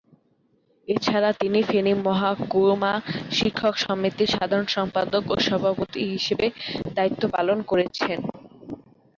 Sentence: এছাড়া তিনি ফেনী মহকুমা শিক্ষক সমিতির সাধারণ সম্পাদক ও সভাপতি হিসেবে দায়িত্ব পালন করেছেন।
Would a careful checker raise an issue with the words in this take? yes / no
no